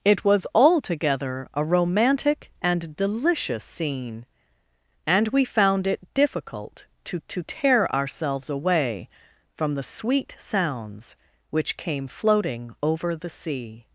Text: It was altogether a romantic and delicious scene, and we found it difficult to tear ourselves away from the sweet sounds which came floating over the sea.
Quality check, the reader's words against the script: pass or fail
fail